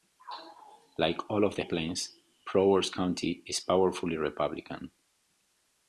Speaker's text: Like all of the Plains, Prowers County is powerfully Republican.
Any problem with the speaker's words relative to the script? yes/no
no